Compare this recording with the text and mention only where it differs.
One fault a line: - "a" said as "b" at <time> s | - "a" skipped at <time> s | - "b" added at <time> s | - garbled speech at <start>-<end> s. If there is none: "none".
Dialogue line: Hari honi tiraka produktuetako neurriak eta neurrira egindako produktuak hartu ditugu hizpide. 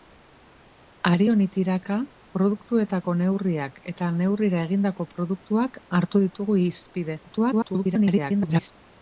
- garbled speech at 7.3-8.7 s